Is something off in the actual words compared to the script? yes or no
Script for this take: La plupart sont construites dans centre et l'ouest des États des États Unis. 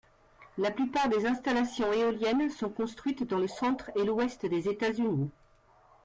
yes